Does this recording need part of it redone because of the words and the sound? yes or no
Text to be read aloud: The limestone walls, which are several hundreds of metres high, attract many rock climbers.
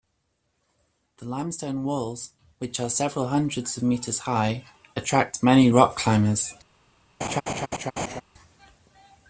yes